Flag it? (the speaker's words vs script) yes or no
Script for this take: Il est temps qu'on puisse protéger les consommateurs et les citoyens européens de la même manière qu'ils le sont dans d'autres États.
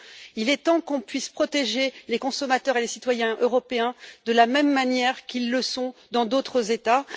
no